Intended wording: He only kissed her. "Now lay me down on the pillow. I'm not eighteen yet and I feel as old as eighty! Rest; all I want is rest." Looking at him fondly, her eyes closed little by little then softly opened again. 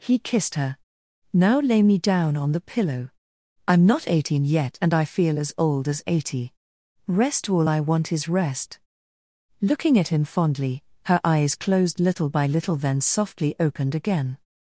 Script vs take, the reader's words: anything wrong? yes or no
yes